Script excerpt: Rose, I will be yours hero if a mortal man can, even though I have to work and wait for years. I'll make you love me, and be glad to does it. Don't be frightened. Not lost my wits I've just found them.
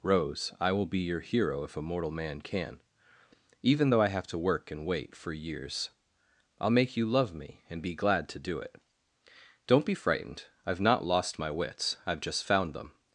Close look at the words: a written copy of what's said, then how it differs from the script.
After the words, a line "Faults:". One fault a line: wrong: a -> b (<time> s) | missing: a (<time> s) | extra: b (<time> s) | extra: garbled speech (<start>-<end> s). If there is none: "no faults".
Rose, I will be your hero if a mortal man can, even though I have to work and wait for years. I'll make you love me, and be glad to do it. Don't be frightened. I've not lost my wits I've just found them.
Faults:
wrong: yours -> your (1.0 s)
wrong: does -> do (8.4 s)
extra: I've (10.7 s)